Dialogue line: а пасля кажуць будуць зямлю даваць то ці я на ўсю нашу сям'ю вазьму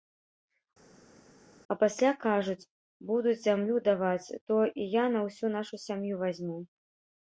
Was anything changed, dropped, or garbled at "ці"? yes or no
yes